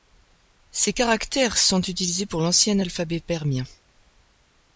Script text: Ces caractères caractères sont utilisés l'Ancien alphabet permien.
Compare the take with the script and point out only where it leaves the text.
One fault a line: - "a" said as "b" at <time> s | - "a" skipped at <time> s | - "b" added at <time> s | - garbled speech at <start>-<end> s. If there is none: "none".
- "caractères" skipped at 1.6 s
- "pour" added at 2.2 s